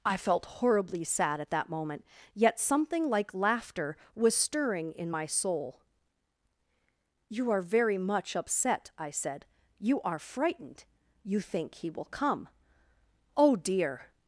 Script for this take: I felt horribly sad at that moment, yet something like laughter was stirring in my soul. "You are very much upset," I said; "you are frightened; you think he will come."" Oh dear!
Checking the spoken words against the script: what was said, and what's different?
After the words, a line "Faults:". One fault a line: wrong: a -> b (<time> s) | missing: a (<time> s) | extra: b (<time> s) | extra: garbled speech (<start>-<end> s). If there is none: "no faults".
I felt horribly sad at that moment, yet something like laughter was stirring in my soul. "You are very much upset," I said; "you are frightened; you think he will come."" Oh dear!
Faults:
no faults